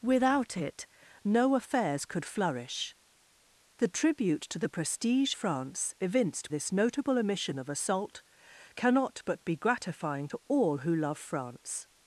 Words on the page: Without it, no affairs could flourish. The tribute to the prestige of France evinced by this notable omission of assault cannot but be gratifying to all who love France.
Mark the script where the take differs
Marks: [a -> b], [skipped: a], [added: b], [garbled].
Without it, no affairs could flourish. The tribute to the prestige [skipped: of] France evinced [skipped: by] this notable omission of assault cannot but be gratifying to all who love France.